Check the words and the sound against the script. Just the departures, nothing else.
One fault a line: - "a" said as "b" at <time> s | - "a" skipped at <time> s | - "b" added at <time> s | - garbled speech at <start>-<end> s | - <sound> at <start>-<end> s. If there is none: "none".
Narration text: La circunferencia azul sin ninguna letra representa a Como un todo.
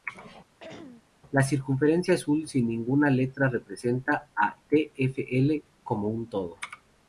- throat clearing at 0.6-1.1 s
- "TfL" added at 4.7 s